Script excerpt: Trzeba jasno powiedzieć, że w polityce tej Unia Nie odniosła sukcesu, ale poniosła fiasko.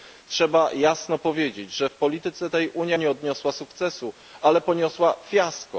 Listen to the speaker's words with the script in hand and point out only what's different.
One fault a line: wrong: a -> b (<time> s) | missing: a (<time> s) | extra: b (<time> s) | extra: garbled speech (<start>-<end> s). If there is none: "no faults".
no faults